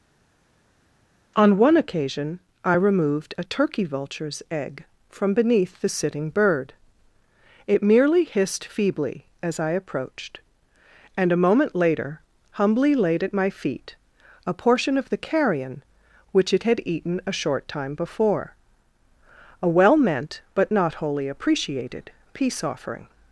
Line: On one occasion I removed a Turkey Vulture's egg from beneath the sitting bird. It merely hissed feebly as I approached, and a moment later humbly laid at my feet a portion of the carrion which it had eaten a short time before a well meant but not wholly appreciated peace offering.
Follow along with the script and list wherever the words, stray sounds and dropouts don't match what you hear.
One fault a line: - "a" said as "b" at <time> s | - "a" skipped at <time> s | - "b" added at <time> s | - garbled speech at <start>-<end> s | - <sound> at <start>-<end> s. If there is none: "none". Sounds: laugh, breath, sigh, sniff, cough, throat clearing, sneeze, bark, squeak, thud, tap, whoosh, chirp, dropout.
none